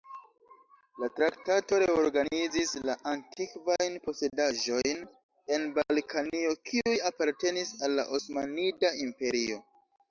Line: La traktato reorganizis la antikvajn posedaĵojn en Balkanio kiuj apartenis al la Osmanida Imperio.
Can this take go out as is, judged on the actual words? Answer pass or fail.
pass